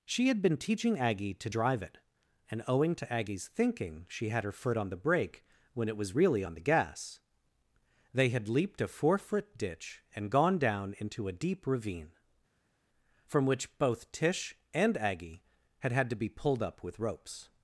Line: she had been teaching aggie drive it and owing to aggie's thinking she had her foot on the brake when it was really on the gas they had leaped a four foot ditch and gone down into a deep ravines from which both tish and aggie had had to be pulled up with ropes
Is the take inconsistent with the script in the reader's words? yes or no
yes